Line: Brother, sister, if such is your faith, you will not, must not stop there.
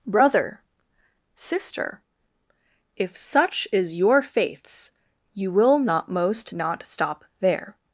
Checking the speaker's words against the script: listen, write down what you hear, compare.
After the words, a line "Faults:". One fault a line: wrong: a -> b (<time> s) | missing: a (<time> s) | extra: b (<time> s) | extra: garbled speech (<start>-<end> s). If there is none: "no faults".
Brother, sister, if such is your faiths, you will not, most not stop there.
Faults:
wrong: faith -> faiths (4.2 s)
wrong: must -> most (6.1 s)